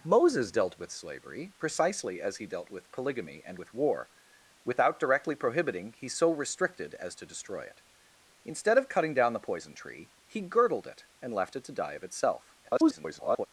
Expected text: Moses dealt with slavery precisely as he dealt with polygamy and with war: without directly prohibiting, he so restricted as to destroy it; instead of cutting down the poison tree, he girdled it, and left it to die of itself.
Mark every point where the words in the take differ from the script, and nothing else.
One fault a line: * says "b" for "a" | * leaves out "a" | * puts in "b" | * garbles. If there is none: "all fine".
* garbles